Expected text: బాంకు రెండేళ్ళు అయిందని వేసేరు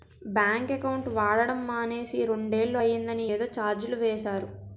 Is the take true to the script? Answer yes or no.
no